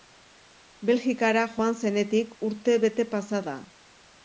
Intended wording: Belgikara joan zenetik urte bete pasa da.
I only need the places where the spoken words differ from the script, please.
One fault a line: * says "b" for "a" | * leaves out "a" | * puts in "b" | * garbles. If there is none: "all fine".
all fine